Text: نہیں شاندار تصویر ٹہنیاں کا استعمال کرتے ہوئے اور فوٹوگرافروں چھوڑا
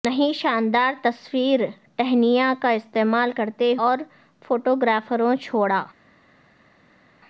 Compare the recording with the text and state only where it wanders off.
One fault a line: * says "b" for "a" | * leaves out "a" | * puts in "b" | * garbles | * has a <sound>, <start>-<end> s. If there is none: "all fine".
* leaves out "ہوئے"